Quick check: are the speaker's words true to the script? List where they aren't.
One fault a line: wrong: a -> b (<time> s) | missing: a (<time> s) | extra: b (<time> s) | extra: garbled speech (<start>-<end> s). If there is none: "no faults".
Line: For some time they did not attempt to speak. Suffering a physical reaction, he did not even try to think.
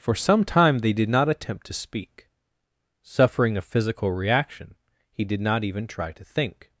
no faults